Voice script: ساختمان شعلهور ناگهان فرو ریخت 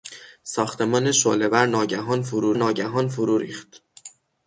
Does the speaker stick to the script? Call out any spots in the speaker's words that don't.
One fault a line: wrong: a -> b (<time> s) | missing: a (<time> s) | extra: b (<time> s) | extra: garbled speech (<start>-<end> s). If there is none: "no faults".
extra: ناگهان فرو (2.5 s)